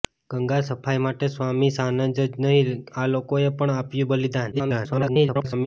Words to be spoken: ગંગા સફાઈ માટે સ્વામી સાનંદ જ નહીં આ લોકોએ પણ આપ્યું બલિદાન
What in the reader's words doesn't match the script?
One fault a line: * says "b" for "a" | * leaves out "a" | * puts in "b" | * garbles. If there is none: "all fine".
* garbles